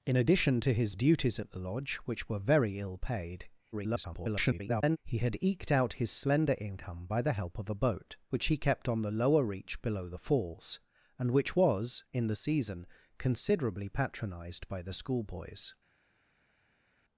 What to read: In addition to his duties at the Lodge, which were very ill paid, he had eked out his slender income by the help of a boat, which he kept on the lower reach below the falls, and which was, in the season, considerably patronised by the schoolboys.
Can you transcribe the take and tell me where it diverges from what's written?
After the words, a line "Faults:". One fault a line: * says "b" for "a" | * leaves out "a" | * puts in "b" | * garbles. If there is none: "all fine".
In addition to his duties at the Lodge, which were very ill paid, [garbled] he had eked out his slender income by the help of a boat, which he kept on the lower reach below the falls, and which was, in the season, considerably patronised by the schoolboys.
Faults:
* garbles